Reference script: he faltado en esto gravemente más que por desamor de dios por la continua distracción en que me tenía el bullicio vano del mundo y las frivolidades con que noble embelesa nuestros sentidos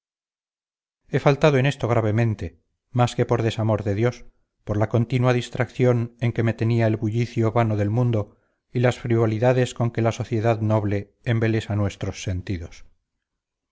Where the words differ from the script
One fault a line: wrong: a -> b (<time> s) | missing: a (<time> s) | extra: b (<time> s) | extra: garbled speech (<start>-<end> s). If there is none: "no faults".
extra: la sociedad (10.0 s)